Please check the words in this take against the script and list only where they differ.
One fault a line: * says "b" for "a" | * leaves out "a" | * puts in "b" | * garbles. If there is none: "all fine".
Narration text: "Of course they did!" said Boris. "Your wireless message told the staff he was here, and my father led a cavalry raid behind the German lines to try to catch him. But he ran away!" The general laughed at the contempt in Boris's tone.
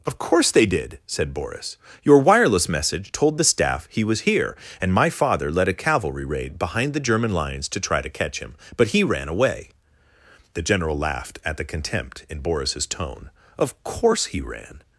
* puts in "Of course he ran"